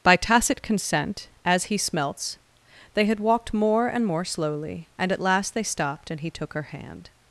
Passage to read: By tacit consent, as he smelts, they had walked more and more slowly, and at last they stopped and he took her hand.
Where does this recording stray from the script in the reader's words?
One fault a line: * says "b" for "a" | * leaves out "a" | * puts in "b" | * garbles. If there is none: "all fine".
all fine